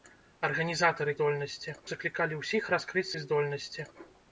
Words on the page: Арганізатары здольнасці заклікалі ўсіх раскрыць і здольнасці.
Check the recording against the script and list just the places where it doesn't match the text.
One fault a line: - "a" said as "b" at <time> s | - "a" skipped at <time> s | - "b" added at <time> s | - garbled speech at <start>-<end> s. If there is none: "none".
none